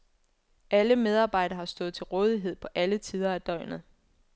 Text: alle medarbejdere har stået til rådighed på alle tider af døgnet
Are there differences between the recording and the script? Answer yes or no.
no